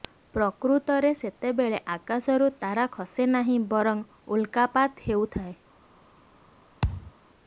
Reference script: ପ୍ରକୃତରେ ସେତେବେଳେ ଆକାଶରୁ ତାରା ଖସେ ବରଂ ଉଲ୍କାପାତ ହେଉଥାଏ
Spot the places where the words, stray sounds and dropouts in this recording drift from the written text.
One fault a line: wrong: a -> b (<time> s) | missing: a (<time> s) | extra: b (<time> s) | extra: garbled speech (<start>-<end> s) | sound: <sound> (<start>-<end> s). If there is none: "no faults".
extra: ନାହିଁ (3.4 s)
sound: thud (6.8-7.1 s)